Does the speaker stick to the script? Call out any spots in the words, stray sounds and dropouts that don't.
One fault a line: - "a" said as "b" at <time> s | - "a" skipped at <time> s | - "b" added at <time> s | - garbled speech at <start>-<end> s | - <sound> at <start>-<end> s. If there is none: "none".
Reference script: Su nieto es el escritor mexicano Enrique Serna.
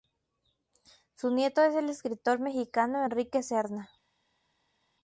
none